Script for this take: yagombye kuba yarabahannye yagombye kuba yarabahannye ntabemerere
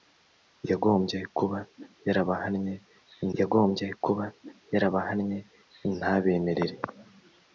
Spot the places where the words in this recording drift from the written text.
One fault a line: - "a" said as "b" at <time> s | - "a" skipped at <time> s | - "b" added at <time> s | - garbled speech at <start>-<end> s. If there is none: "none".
none